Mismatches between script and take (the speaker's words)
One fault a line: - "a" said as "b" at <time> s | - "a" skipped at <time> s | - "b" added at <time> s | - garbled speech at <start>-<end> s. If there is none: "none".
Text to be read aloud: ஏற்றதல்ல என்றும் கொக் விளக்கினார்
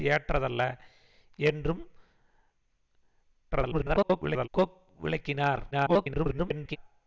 - garbled speech at 3.5-4.5 s
- garbled speech at 5.7-6.8 s